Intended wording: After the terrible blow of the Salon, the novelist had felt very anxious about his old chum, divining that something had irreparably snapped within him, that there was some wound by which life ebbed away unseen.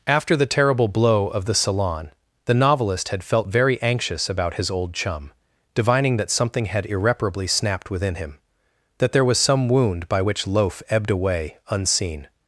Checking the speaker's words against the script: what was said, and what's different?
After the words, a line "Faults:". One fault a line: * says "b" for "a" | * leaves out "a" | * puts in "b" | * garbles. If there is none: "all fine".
After the terrible blow of the Salon, the novelist had felt very anxious about his old chum, divining that something had irreparably snapped within him, that there was some wound by which loaf ebbed away unseen.
Faults:
* says "loaf" for "life"